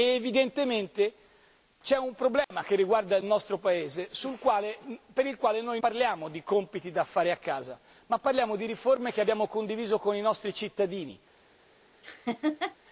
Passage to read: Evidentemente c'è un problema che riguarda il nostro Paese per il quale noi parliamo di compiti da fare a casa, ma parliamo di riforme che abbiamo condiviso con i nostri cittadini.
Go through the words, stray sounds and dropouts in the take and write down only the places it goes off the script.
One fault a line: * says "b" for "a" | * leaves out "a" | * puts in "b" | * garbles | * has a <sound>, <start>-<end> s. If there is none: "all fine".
* has a dropout, 2.4-2.5 s
* has a laugh, 12.0-12.8 s